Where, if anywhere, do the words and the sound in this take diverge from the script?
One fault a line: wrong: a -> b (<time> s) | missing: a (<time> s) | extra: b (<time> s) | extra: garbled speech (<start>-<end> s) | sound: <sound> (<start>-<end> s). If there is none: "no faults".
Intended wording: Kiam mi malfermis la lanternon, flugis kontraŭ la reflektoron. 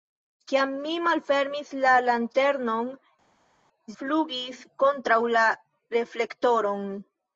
no faults